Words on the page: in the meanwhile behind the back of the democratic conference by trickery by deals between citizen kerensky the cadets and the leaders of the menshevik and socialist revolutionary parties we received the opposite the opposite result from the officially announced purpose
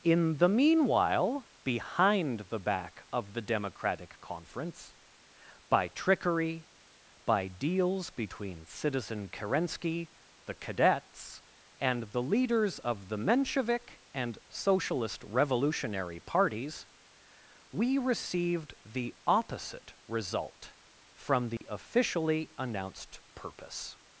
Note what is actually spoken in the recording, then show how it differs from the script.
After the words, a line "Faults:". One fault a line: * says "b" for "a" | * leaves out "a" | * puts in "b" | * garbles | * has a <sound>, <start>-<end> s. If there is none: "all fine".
in the meanwhile behind the back of the democratic conference by trickery by deals between citizen kerensky the cadets and the leaders of the menshevik and socialist revolutionary parties we received the opposite result from the officially announced purpose
Faults:
* leaves out "the opposite"
* has a dropout, 21.6-21.6 s